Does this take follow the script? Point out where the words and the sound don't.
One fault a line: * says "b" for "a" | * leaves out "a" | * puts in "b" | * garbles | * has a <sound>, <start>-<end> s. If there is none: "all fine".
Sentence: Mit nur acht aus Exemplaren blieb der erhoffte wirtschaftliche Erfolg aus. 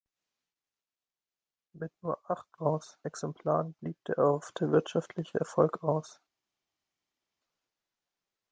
all fine